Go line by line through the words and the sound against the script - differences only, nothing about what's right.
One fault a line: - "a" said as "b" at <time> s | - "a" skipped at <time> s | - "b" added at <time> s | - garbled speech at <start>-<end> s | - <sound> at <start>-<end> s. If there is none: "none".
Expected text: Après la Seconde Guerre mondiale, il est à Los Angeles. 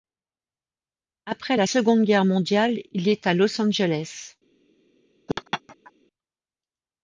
- laugh at 5.3-5.9 s